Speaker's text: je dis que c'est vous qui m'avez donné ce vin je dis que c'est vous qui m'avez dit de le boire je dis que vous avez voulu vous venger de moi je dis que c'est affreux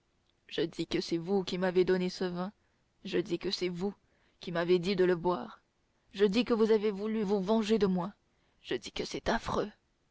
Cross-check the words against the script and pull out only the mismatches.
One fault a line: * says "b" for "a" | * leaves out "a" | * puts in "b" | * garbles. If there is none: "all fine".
all fine